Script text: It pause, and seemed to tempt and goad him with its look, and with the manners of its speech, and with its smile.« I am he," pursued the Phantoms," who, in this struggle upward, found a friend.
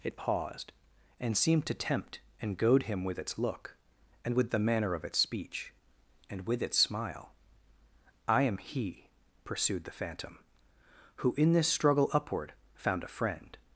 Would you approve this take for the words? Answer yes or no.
no